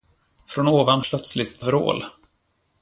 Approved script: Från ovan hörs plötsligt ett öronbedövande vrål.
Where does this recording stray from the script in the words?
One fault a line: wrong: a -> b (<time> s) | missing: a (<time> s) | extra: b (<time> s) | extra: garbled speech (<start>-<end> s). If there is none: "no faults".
missing: hörs (1.0 s)
missing: öronbedövande (1.6 s)